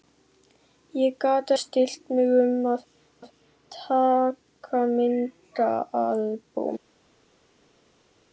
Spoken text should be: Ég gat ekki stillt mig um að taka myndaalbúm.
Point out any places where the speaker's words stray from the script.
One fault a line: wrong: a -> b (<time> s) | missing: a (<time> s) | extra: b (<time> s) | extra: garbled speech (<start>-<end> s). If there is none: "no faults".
missing: ekki (1.5 s)
extra: að (3.2 s)